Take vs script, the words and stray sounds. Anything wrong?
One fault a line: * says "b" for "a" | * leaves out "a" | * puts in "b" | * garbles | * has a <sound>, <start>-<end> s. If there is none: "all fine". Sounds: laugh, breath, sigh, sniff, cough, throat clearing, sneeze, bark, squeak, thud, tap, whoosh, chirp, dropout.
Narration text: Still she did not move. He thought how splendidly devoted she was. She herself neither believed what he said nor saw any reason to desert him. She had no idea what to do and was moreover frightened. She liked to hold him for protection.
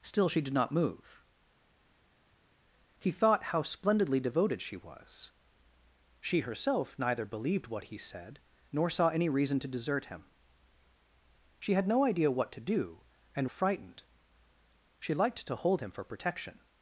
* leaves out "was moreover"